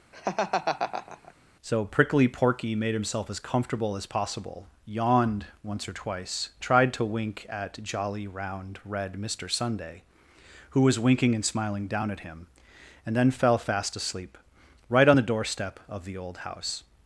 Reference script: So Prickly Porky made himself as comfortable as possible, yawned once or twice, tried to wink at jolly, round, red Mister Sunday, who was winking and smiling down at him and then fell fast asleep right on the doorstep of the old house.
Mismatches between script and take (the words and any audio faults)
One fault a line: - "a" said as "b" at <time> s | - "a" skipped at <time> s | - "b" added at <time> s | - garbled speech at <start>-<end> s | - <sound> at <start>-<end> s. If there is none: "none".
- laugh at 0.1-1.3 s